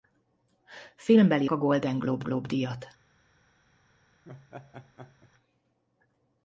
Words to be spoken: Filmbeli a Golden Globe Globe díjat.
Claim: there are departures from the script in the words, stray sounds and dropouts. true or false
true